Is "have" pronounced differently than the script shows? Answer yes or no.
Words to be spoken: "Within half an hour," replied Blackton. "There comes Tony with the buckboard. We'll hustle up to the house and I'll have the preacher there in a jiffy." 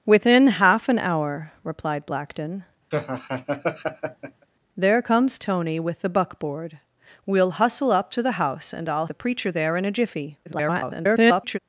yes